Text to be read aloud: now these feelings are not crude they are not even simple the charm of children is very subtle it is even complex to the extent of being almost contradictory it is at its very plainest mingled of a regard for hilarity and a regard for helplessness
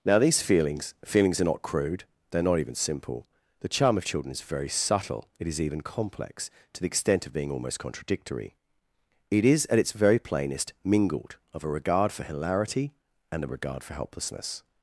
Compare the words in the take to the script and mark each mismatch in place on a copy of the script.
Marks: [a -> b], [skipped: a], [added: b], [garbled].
now these feelings [added: feelings] are not crude they are not even simple the charm of children is very subtle it is even complex to the extent of being almost contradictory it is at its very plainest mingled of a regard for hilarity and a regard for helplessness